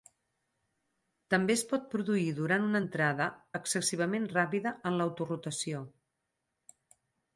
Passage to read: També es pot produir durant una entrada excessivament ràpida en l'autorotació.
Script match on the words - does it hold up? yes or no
yes